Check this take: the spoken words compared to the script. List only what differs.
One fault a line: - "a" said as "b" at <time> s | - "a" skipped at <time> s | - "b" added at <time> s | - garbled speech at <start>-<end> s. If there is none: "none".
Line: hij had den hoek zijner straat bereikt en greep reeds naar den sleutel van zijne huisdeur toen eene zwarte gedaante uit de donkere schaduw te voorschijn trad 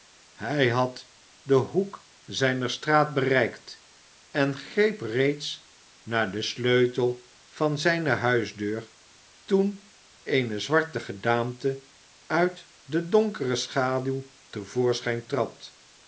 none